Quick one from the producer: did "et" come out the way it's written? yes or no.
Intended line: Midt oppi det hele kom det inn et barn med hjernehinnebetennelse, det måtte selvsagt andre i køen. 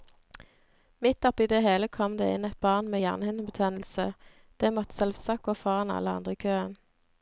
yes